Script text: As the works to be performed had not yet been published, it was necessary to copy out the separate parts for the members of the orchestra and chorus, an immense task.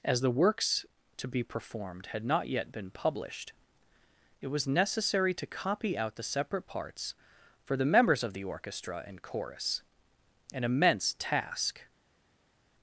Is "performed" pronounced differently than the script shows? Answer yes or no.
no